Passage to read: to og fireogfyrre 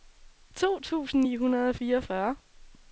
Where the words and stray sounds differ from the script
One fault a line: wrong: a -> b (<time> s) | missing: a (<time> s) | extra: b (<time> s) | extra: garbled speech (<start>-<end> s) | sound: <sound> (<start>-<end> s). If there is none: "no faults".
extra: tusind ni hundrede (0.8 s)